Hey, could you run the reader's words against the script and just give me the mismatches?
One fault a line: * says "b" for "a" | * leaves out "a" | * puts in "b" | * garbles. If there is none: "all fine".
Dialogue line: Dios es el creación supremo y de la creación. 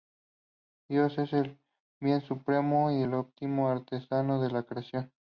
* says "bien" for "creación"
* puts in "el óptimo artesano"